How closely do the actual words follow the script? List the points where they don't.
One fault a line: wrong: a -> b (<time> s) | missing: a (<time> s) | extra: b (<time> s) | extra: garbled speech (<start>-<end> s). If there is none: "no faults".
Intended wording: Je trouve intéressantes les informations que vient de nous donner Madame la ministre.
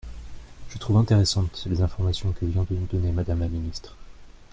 no faults